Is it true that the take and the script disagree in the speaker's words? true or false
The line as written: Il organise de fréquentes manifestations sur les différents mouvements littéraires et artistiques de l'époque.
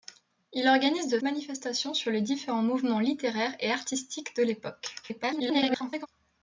true